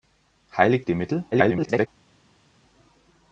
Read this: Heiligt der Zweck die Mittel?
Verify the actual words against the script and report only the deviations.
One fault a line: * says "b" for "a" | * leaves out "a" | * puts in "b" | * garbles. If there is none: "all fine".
* leaves out "der Zweck"
* garbles